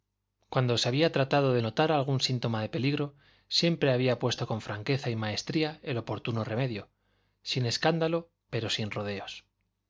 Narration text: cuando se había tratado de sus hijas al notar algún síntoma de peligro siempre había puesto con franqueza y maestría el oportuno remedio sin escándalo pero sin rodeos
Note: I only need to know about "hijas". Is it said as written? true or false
false